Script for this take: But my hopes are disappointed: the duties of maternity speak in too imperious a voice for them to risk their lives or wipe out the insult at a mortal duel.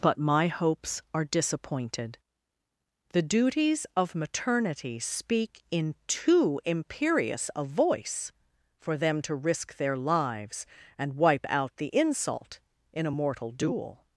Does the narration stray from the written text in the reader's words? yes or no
yes